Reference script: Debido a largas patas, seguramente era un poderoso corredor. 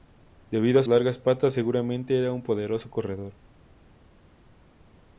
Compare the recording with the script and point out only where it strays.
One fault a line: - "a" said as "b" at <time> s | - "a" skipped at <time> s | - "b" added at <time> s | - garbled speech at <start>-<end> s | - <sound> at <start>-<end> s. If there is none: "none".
none